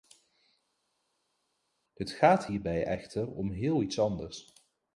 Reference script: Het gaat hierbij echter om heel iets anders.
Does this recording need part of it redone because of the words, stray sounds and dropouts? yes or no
no